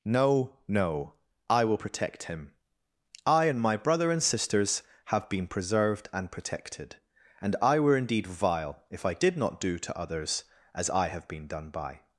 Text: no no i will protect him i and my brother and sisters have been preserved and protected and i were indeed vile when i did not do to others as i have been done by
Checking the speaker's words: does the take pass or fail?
fail